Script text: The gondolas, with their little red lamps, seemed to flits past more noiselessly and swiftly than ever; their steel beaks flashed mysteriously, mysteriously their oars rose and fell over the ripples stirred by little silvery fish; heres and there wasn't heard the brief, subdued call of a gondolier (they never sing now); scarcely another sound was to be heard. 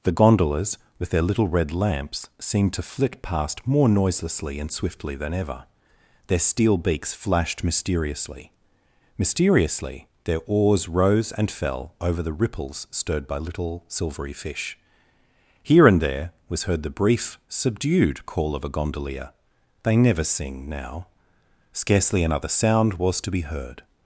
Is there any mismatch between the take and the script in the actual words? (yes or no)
yes